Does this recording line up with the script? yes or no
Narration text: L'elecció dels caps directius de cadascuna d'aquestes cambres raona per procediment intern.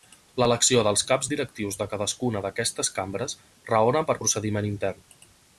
yes